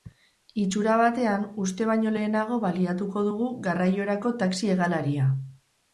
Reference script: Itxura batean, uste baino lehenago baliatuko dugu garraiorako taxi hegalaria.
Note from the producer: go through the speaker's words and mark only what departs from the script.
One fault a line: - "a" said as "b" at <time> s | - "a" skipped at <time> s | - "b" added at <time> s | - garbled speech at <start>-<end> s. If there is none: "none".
none